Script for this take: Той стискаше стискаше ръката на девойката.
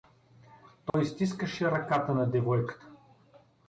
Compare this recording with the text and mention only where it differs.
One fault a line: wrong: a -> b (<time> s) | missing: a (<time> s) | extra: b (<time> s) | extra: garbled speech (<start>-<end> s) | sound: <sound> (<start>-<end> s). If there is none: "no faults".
sound: dropout (0.9-0.9 s)
missing: стискаше (1.7 s)